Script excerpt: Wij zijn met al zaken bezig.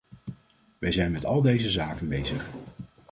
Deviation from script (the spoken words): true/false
true